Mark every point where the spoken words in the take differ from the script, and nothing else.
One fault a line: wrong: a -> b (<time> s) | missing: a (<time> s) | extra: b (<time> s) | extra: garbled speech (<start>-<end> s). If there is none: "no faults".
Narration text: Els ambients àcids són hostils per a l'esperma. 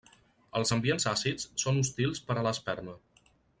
no faults